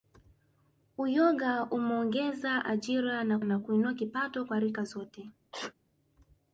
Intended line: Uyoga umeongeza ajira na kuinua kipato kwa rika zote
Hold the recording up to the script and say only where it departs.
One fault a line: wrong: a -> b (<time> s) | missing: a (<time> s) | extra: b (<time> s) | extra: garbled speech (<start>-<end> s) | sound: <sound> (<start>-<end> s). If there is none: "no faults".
extra: na (3.4 s)
sound: sneeze (5.5-5.7 s)